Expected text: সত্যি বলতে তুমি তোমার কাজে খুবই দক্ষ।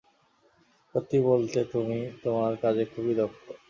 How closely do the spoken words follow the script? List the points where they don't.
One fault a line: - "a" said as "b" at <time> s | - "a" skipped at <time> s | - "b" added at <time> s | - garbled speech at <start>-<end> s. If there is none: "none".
none